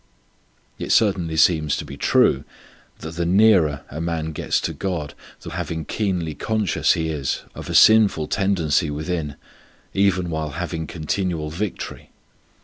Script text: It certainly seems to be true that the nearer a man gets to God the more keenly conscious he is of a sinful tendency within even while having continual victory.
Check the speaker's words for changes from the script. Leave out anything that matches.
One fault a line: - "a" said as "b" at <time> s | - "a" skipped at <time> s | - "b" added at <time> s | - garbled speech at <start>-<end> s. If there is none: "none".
- "more" said as "having" at 5.5 s